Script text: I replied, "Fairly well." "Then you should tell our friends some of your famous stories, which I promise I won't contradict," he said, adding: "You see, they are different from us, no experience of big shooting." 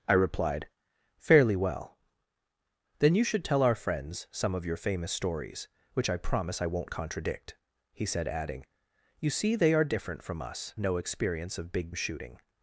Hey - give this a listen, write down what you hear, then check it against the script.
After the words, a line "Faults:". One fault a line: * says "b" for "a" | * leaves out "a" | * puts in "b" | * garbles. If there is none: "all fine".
I replied, "Fairly well." "Then you should tell our friends some of your famous stories, which I promise I won't contradict," he said, adding: "You see, they are different from us, no experience of big shooting."
Faults:
all fine